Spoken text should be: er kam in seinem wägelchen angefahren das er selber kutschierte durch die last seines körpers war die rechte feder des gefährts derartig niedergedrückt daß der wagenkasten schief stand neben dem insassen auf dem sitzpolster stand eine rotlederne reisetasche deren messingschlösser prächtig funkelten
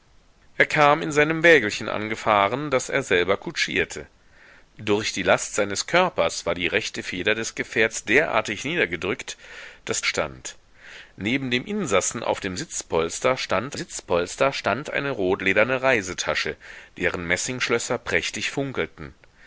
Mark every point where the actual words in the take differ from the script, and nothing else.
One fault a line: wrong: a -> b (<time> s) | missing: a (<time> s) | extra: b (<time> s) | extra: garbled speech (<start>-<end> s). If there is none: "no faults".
missing: der wagenkasten schief (10.0 s)
extra: sitzpolster stand (13.7 s)